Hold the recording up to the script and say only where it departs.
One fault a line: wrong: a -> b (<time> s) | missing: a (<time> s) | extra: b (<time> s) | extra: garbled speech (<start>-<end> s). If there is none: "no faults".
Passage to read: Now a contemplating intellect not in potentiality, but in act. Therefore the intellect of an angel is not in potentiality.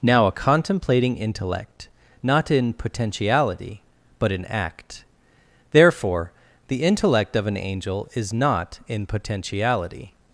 no faults